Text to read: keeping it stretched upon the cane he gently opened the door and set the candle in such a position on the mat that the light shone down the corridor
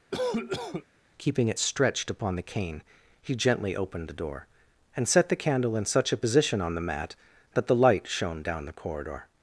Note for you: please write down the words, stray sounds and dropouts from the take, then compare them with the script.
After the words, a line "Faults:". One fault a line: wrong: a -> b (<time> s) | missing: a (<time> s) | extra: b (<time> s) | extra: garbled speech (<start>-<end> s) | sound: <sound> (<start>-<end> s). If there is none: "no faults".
keeping it stretched upon the cane he gently opened the door and set the candle in such a position on the mat that the light shone down the corridor
Faults:
sound: cough (0.1-0.9 s)